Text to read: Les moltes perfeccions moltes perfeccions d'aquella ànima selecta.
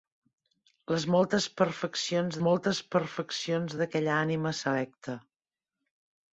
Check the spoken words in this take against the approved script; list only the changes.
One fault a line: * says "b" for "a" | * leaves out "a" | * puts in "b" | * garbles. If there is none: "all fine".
all fine